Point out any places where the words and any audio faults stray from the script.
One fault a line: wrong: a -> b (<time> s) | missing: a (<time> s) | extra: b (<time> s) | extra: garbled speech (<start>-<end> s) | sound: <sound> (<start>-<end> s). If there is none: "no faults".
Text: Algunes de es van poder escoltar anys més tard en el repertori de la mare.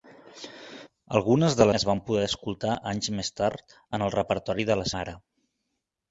no faults